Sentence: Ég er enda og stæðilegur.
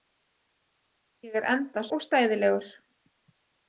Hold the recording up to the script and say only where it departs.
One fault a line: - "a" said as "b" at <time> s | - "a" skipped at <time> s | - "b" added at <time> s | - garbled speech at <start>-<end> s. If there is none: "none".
none